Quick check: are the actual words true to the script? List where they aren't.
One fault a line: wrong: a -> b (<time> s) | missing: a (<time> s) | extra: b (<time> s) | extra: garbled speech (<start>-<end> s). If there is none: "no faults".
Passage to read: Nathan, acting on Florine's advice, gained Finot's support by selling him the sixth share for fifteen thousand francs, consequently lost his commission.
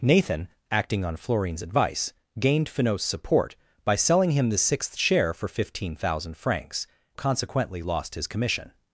no faults